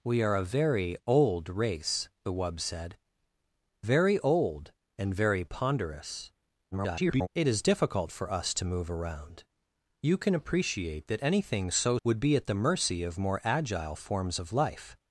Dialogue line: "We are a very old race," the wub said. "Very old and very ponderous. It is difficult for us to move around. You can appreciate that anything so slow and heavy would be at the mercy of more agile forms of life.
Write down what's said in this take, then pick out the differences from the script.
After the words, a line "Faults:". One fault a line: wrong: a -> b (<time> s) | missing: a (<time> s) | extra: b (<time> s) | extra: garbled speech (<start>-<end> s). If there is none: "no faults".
"We are a very old race," the wub said. "Very old and very ponderous. [garbled] It is difficult for us to move around. You can appreciate that anything so would be at the mercy of more agile forms of life.
Faults:
extra: garbled speech (6.7-7.3 s)
missing: slow and heavy (12.0 s)